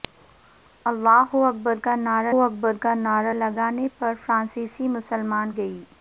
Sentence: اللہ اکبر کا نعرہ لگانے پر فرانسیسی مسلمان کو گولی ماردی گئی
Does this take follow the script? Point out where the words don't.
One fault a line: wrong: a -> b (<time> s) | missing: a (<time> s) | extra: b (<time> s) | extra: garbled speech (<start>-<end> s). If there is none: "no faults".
extra: اکبر کا نعرہ (2.4 s)
missing: کو گولی ماردی (5.5 s)